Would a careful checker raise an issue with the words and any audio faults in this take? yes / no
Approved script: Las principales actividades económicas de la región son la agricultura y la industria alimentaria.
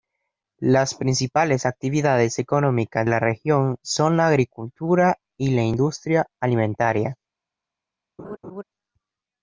yes